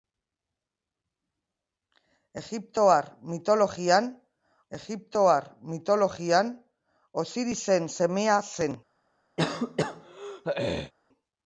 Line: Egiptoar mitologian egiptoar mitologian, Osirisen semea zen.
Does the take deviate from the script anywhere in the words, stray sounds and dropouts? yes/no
yes